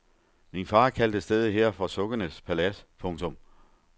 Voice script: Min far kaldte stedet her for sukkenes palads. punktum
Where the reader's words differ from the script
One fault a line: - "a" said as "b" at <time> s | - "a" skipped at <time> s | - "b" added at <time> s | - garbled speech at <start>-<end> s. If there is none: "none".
none